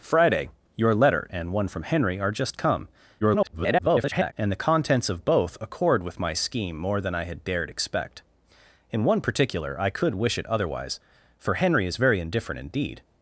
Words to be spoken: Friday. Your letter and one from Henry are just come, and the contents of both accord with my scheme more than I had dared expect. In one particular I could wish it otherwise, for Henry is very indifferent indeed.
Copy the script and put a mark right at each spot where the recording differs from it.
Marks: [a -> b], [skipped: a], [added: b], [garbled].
Friday. Your letter and one from Henry are just come, [garbled] and the contents of both accord with my scheme more than I had dared expect. In one particular I could wish it otherwise, for Henry is very indifferent indeed.